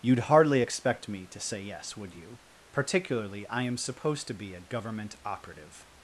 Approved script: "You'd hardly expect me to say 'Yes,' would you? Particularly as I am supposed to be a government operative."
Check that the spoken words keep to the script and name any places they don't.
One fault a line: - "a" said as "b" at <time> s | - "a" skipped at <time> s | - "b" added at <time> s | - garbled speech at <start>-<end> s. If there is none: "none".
- "as" skipped at 3.5 s